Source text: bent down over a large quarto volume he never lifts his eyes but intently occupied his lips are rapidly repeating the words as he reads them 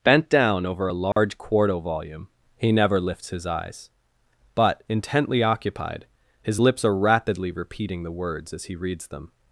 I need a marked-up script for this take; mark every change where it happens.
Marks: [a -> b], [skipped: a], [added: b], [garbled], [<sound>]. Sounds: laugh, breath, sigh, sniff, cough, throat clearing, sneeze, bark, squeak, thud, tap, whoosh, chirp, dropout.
bent down over a large [dropout] quarto volume he never lifts his eyes but intently occupied his lips are rapidly repeating the words as he reads them